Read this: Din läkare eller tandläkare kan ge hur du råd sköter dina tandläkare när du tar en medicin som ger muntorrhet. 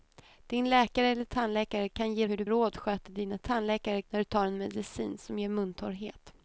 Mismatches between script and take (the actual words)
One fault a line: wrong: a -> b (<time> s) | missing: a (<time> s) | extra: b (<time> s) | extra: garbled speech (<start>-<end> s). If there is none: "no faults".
no faults